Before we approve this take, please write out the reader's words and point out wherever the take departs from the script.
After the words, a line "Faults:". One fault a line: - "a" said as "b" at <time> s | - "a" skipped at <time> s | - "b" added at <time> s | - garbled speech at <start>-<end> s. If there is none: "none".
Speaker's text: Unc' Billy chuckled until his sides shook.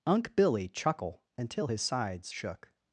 Unc' Billy chuckle until his sides shook.
Faults:
- "chuckled" said as "chuckle" at 0.7 s